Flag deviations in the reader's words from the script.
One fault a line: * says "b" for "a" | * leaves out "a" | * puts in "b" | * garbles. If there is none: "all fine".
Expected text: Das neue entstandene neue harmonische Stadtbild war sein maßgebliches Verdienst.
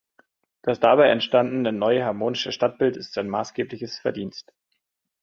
* says "dabei" for "neue"
* says "ist" for "war"